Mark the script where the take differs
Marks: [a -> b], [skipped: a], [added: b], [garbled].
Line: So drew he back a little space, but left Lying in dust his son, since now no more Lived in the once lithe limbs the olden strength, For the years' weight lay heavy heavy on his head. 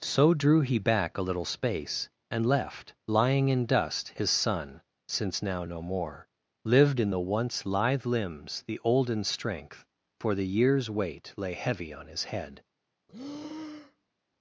So drew he back a little space, [but -> and] left Lying in dust his son, since now no more Lived in the once lithe limbs the olden strength, For the years' weight lay heavy [skipped: heavy] on his head.